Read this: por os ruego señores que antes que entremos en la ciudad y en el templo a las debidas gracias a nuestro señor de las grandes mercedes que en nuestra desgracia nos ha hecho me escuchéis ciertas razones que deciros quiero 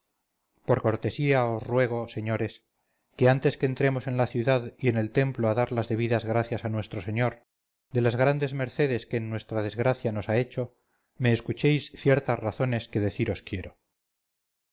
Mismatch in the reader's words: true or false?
true